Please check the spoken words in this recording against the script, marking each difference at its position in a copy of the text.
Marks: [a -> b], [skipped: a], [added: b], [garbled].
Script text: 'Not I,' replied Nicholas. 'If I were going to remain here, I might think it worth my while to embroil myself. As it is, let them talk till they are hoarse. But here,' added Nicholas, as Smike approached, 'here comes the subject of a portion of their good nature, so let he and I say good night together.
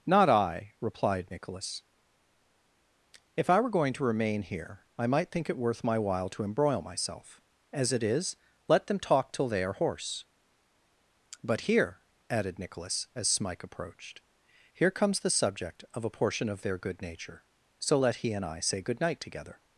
'Not I,' replied Nicholas. 'If I were going to remain here, I might think it worth my while to embroil myself. As it is, let them talk till they are hoarse. But here,' added Nicholas, as Smike approached, 'here comes the subject of a portion of their good nature, so let he and I say good night together.